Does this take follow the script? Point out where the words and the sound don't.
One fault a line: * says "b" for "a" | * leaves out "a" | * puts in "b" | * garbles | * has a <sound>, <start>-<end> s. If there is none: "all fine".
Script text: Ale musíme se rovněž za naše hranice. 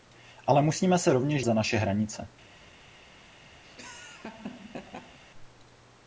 * has a laugh, 3.6-5.2 s